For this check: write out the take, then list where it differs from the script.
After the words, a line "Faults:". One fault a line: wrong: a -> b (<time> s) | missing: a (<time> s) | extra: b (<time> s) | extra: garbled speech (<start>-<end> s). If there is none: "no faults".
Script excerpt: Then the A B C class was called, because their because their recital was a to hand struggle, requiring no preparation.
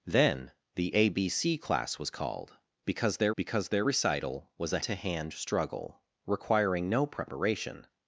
Then the A B C class was called, because their because their recital was a to hand struggle, requiring no preparation.
Faults:
no faults